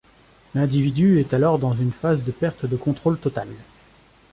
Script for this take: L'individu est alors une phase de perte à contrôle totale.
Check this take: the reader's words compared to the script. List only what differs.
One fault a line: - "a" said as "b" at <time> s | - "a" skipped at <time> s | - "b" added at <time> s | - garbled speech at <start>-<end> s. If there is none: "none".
- "dans" added at 1.6 s
- "à" said as "de" at 2.6 s